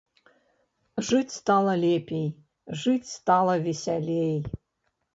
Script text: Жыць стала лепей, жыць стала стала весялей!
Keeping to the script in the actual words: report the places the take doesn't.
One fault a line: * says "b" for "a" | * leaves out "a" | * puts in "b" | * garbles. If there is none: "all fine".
* leaves out "стала"